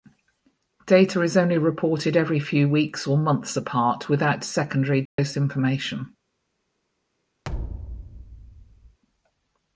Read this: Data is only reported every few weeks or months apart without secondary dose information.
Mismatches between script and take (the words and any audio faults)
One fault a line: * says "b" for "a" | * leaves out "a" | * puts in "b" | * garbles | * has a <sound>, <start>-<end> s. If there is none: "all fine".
* has a dropout, 5.1-5.2 s
* has a thud, 7.4-9.0 s